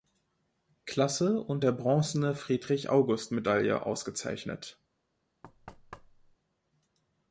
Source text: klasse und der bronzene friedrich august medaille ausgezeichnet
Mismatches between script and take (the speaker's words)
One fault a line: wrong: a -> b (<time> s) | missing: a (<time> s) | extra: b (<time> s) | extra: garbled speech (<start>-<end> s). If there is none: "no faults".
no faults